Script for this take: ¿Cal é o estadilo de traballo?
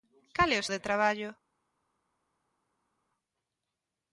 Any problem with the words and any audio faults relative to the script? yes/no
yes